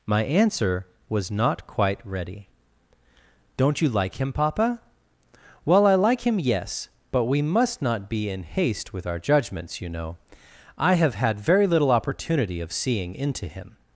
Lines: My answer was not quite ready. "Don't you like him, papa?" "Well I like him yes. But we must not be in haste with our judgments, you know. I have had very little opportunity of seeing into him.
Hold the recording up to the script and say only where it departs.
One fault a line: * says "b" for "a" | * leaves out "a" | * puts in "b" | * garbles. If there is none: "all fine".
all fine